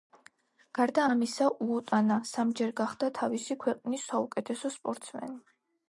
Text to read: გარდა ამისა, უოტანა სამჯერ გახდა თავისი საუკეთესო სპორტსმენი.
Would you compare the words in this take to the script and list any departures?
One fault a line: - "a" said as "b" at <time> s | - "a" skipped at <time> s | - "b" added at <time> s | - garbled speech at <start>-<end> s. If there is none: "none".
- "ქვეყნის" added at 3.6 s